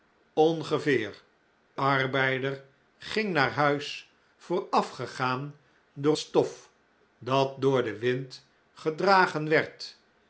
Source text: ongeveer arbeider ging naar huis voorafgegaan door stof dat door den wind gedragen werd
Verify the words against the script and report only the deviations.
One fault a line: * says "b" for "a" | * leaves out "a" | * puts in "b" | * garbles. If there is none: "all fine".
all fine